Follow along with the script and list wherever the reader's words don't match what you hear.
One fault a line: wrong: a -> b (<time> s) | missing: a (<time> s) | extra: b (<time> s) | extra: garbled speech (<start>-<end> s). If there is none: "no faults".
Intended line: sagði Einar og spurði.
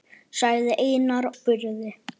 missing: og (1.3 s)